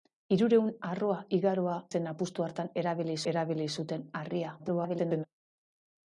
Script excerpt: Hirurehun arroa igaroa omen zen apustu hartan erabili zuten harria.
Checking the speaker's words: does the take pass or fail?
fail